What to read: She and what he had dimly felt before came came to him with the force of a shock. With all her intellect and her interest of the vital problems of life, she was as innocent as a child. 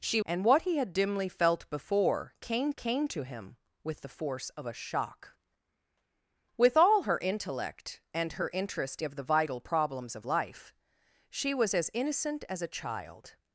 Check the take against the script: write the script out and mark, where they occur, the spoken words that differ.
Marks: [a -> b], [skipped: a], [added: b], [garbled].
She and what he had dimly felt before came came to him with the force of a shock. With all her intellect and her interest of the vital problems of life, she was as innocent as a child.